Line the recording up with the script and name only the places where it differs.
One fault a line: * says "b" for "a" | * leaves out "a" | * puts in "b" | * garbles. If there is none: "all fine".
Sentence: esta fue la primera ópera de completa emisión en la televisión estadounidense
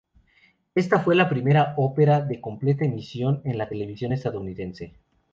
all fine